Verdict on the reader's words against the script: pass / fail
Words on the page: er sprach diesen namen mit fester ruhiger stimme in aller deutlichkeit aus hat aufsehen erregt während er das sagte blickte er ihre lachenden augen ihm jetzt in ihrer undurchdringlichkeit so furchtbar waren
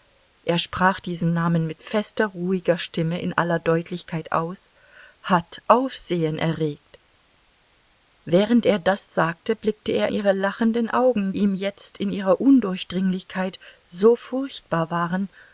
pass